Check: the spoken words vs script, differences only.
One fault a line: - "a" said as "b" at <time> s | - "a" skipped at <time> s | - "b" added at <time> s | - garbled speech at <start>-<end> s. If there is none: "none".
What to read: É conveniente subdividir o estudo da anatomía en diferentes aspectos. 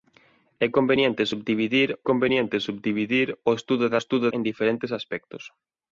- "conveniente subdividir" added at 2.1 s
- "anatomía" said as "estudo" at 4.0 s